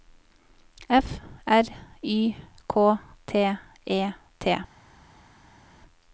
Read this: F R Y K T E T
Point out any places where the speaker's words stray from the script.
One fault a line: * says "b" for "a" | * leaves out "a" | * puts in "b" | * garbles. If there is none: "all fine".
all fine